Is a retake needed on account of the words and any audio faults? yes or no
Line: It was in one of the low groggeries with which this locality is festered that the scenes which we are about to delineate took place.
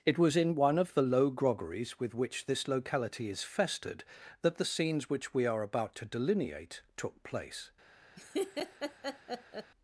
yes